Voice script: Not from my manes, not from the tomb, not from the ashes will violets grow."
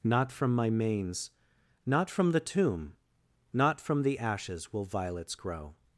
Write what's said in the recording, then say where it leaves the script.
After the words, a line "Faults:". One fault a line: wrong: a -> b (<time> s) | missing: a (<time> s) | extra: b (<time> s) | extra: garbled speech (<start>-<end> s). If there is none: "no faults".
Not from my manes, not from the tomb, not from the ashes will violets grow."
Faults:
no faults